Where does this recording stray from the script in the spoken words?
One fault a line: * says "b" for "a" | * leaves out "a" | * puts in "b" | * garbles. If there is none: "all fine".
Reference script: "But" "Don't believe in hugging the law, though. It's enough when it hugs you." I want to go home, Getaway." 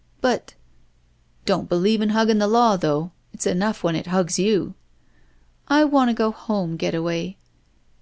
all fine